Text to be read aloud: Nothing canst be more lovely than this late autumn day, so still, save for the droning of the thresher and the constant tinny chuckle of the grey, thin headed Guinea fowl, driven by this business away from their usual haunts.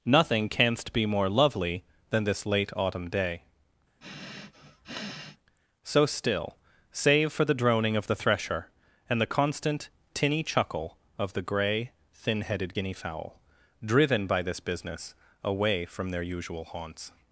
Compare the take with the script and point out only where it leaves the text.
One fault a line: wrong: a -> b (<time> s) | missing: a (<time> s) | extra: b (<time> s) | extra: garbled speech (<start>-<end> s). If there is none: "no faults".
no faults